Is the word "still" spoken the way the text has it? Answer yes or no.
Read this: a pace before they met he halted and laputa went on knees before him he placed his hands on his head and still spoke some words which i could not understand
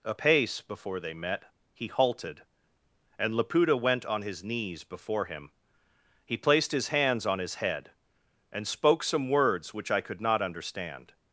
no